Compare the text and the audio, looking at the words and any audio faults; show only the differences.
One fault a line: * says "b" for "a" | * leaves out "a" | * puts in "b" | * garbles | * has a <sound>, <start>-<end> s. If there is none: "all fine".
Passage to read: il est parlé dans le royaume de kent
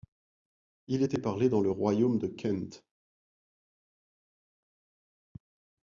* says "était" for "est"